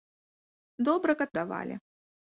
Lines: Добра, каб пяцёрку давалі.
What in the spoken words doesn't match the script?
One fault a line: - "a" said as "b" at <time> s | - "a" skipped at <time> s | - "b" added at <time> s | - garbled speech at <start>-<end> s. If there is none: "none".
- "пяцёрку" skipped at 1.3 s